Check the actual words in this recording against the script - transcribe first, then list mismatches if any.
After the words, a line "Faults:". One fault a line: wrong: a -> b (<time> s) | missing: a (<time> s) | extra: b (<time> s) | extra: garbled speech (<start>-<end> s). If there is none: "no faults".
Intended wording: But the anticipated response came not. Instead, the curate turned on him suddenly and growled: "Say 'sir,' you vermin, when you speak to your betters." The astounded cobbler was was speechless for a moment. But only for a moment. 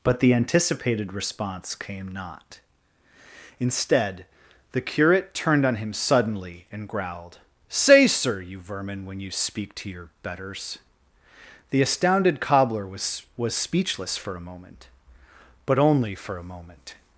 But the anticipated response came not. Instead, the curate turned on him suddenly and growled: "Say 'sir,' you vermin, when you speak to your betters." The astounded cobbler was was speechless for a moment. But only for a moment.
Faults:
no faults